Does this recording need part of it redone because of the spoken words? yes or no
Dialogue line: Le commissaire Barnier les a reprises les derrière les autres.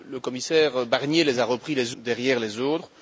no